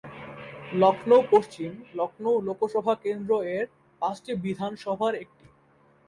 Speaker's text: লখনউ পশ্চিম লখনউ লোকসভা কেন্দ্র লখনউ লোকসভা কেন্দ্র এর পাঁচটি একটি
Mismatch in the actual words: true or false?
true